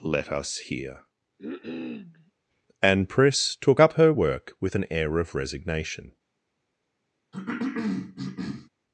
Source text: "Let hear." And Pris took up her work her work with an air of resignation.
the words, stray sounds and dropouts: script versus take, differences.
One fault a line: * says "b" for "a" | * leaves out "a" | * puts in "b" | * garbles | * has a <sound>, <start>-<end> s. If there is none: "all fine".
* puts in "us"
* has a cough, 1.4-2.3 s
* leaves out "her work"
* has a cough, 7.3-8.7 s